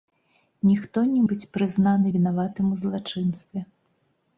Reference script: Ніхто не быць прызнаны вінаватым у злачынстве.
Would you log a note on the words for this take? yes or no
no